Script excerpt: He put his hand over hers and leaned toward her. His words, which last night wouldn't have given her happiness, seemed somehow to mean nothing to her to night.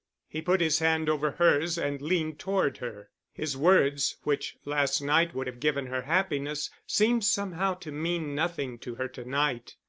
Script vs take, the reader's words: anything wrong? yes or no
yes